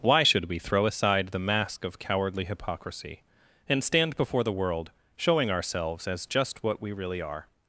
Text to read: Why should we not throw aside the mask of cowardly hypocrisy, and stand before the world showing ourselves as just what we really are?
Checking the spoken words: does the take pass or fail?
fail